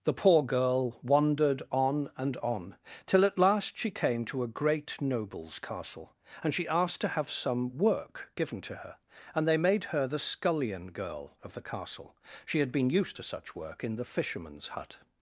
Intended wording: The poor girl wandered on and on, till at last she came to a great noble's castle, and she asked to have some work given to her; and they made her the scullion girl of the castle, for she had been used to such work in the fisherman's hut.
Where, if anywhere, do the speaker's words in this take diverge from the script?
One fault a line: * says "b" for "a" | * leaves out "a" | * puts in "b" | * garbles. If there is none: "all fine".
* leaves out "for"